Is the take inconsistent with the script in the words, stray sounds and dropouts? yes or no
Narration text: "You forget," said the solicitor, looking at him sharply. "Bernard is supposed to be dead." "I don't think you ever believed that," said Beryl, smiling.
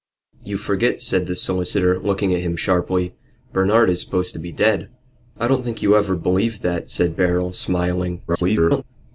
yes